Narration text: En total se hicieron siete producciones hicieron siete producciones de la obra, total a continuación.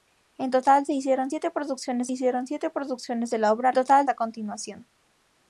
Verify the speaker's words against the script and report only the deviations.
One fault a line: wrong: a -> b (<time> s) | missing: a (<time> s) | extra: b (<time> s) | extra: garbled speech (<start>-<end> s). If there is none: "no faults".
no faults